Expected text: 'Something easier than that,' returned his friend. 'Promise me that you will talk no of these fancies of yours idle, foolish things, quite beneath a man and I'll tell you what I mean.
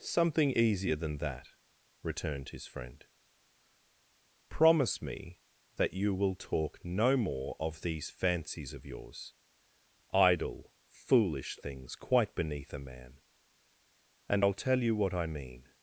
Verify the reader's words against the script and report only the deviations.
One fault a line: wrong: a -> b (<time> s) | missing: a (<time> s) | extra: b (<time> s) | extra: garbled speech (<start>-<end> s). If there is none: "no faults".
extra: more (7.2 s)